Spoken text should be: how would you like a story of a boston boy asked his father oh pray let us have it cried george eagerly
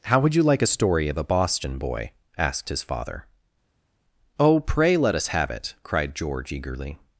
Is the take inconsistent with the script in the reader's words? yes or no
no